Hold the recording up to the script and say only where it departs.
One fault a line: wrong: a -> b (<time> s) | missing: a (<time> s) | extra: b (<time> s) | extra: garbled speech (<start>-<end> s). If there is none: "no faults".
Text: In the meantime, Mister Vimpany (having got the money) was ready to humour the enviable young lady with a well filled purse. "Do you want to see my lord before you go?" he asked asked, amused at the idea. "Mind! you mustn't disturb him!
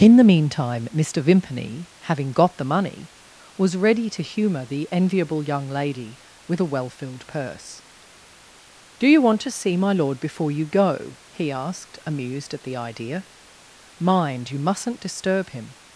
missing: asked (12.0 s)